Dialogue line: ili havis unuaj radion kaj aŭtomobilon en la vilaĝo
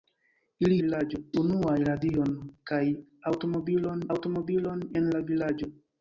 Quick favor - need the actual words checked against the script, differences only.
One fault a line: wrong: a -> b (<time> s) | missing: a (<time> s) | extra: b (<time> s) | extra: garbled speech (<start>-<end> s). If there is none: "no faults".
wrong: havis -> vilaĝo (0.8 s)
extra: aŭtomobilon (4.2 s)